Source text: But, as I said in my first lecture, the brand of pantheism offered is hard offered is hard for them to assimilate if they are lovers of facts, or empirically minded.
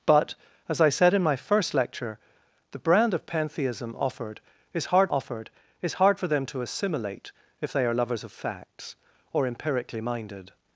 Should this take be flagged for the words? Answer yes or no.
no